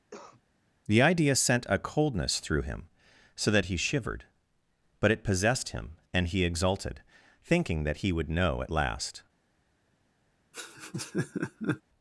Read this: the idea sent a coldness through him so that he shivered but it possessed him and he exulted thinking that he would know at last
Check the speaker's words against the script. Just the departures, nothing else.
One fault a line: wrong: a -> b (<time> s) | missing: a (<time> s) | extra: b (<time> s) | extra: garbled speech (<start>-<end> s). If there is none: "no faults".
no faults